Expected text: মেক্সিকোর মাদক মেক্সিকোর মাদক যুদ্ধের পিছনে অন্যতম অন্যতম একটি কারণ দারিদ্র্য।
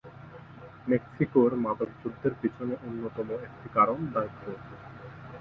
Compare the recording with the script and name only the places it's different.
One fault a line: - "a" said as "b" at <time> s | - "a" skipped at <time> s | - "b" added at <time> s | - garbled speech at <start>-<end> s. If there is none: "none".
- "মেক্সিকোর মাদক" skipped at 1.9 s
- "অন্যতম" skipped at 3.3 s